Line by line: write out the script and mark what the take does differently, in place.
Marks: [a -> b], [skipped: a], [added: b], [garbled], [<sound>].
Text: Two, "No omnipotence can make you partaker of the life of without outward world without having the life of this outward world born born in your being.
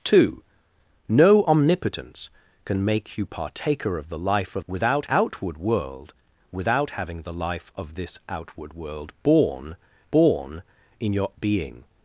Two, "No omnipotence can make you partaker of the life of without outward world without having the life of this outward world born born in your being.